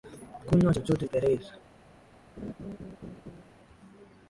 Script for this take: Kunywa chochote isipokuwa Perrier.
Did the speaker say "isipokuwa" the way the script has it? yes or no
no